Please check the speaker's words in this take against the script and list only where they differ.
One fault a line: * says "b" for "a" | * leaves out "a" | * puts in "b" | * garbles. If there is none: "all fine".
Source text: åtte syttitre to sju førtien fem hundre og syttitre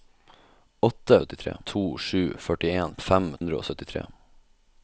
all fine